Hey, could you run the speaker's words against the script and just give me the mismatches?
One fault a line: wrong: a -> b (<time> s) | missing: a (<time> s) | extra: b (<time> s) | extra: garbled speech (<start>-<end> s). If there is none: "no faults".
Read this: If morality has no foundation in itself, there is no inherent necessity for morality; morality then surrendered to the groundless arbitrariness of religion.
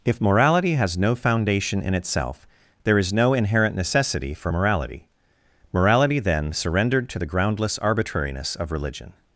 no faults